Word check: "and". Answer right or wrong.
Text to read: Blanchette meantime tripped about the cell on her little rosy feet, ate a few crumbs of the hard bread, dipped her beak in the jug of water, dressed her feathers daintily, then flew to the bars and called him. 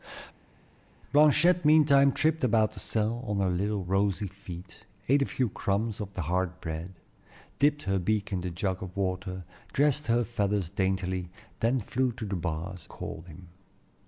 wrong